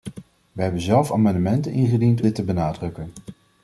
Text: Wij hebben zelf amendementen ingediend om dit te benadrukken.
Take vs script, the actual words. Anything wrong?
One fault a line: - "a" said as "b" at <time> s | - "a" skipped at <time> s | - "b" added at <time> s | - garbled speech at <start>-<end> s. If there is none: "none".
- "om" skipped at 2.2 s